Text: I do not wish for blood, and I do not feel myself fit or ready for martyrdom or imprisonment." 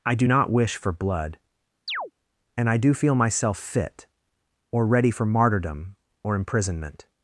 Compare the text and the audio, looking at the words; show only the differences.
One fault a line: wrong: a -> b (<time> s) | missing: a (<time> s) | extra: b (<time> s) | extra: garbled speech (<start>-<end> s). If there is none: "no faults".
missing: not (2.9 s)